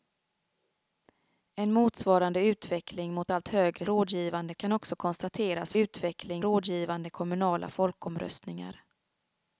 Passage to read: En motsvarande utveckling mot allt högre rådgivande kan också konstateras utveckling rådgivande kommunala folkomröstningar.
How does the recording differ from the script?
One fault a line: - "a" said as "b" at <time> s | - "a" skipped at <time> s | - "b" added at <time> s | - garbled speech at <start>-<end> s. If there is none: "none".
none